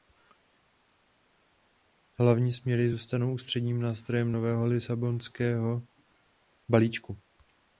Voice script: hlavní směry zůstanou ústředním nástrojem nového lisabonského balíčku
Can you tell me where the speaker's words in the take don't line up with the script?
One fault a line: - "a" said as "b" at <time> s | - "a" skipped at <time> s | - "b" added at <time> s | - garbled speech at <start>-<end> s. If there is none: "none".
none